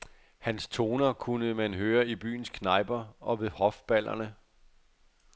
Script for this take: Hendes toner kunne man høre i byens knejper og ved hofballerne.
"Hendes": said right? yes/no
no